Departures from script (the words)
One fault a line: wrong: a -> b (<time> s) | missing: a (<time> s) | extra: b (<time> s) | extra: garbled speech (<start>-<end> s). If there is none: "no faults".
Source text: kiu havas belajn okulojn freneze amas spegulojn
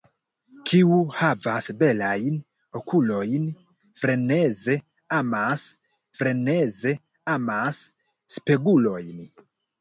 extra: freneze amas (6.2 s)